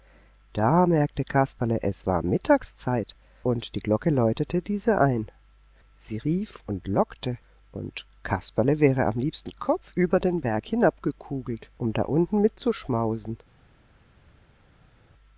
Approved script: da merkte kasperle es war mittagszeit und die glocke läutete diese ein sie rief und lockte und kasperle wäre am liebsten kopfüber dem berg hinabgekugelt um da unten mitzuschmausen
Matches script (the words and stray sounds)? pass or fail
fail